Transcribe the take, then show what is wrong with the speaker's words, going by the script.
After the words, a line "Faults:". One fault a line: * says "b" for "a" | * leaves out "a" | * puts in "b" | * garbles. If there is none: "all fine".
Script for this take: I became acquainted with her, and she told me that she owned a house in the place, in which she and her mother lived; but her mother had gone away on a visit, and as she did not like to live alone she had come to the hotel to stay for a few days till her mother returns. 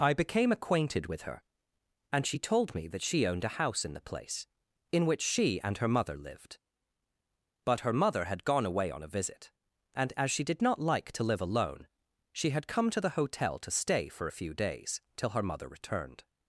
I became acquainted with her, and she told me that she owned a house in the place, in which she and her mother lived; but her mother had gone away on a visit, and as she did not like to live alone she had come to the hotel to stay for a few days till her mother returned.
Faults:
* says "returned" for "returns"